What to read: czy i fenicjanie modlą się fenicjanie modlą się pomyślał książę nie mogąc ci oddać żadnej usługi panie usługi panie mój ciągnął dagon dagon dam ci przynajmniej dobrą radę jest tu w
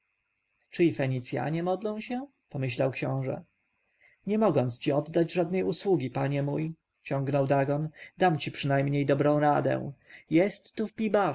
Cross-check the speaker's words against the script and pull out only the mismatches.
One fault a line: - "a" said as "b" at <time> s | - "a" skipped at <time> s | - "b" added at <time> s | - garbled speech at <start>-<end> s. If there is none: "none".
- "fenicjanie modlą się" skipped at 2.3 s
- "usługi panie" skipped at 6.4 s
- "dagon" skipped at 7.9 s